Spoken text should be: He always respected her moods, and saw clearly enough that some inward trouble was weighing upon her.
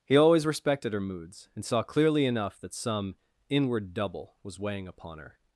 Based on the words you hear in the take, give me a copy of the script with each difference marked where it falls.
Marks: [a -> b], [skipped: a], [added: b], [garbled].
He always respected her moods, and saw clearly enough that some inward [trouble -> double] was weighing upon her.